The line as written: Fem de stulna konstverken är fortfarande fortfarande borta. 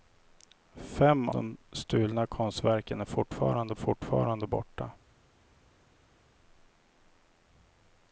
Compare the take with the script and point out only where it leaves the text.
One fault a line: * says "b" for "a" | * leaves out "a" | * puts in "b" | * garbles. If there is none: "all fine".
all fine